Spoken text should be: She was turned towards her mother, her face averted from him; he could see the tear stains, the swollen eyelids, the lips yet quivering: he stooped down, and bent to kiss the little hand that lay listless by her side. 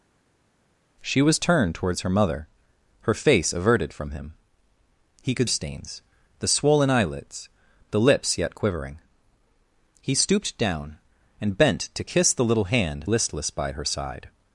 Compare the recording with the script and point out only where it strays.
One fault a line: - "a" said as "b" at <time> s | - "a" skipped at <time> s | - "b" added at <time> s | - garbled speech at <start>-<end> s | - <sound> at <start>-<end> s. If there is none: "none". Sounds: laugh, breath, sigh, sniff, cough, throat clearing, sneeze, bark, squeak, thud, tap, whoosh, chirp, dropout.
- "see the tear" skipped at 5.5 s
- "that lay" skipped at 13.1 s